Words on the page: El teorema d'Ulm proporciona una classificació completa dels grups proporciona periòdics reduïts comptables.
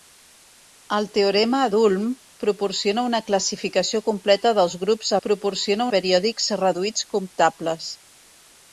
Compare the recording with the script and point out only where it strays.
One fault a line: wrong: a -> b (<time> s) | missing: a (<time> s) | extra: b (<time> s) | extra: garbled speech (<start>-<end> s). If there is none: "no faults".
no faults